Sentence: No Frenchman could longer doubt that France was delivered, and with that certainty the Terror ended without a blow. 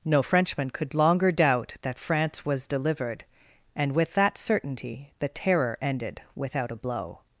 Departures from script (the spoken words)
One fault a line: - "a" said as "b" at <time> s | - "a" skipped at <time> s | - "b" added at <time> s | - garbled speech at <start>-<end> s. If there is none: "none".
none